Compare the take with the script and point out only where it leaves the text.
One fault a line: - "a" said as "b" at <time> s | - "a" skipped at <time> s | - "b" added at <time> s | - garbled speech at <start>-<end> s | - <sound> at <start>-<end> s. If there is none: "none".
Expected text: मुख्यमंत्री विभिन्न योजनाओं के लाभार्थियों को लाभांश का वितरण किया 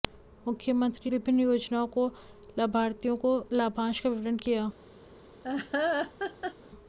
- laugh at 5.4-6.5 s